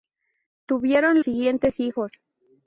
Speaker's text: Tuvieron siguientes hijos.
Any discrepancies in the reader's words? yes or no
no